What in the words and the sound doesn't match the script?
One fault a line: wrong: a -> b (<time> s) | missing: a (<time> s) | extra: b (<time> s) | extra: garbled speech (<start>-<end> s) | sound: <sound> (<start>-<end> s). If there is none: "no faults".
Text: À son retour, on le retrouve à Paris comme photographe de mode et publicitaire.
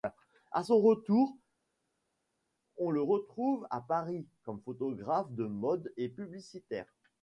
no faults